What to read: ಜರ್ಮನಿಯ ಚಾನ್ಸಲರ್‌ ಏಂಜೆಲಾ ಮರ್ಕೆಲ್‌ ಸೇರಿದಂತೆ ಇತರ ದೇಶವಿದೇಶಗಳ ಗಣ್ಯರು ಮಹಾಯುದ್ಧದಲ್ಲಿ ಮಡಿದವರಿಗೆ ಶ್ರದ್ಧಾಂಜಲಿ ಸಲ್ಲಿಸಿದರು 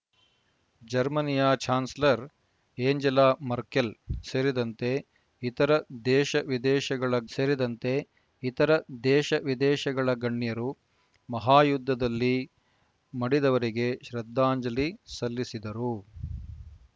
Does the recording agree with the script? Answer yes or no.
no